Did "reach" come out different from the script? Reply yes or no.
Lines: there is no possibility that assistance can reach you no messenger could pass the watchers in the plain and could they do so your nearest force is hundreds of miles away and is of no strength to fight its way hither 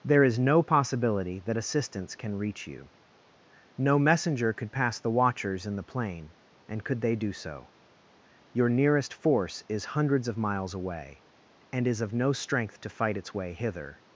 no